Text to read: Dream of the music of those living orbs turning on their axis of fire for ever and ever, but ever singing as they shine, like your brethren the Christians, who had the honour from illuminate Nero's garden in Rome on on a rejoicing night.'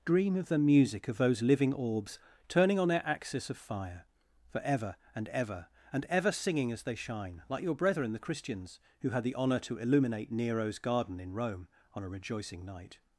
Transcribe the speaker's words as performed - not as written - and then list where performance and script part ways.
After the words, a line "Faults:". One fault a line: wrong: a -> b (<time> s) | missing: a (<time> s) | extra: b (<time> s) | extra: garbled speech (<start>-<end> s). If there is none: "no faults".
Dream of the music of those living orbs turning on their axis of fire for ever and ever, and ever singing as they shine, like your brethren the Christians, who had the honour to illuminate Nero's garden in Rome on a rejoicing night.'
Faults:
wrong: but -> and (5.9 s)
wrong: from -> to (9.6 s)
missing: on (12.0 s)